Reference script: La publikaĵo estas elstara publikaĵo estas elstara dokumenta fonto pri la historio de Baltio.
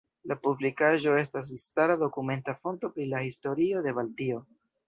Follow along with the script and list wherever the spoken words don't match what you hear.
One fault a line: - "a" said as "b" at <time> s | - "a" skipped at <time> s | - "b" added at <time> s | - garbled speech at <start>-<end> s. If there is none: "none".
- "publikaĵo estas elstara" skipped at 2.0 s